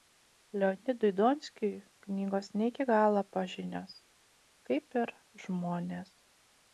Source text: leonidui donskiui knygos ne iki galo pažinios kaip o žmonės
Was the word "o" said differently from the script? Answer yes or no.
yes